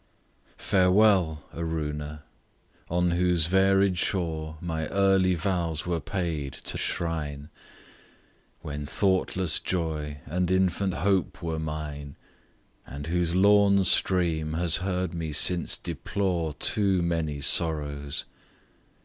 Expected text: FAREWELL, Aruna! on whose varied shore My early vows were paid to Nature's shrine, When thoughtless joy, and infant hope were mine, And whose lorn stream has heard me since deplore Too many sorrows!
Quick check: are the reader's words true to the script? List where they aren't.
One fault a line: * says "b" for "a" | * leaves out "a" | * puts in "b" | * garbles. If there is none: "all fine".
* leaves out "Nature's"